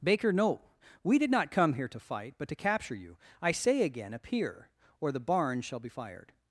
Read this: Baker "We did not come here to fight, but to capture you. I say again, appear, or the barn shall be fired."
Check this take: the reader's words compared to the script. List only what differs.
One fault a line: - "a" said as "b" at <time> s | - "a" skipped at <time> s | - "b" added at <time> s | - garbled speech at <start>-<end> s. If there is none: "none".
- "no" added at 0.3 s